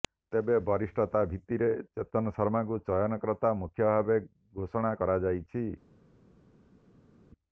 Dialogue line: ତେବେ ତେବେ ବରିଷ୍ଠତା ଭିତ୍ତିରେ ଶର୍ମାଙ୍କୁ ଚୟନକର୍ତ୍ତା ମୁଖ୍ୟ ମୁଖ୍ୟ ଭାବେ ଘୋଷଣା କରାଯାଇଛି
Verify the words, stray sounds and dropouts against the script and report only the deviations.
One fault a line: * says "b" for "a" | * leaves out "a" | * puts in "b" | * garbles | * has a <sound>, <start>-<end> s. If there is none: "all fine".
* leaves out "ତେବେ"
* puts in "ଚେତନ"
* leaves out "ମୁଖ୍ୟ"